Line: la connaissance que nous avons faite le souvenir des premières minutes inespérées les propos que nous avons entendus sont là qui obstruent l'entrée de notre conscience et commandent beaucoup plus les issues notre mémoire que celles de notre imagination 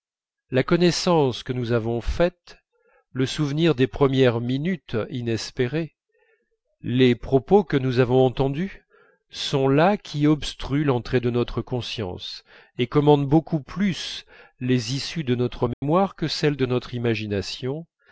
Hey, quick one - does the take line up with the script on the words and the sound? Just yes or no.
no